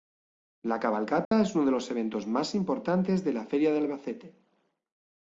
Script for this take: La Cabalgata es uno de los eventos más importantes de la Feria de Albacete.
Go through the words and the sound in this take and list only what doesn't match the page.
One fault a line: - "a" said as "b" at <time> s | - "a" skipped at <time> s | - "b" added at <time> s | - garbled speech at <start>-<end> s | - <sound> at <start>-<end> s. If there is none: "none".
- dropout at 1.2-1.3 s